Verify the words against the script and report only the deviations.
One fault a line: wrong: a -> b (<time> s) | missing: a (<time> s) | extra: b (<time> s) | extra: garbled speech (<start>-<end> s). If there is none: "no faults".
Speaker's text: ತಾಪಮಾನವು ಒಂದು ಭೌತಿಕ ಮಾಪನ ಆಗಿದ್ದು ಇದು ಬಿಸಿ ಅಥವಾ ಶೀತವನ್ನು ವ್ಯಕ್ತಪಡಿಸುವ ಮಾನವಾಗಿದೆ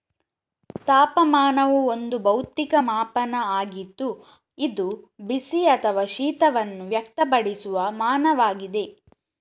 no faults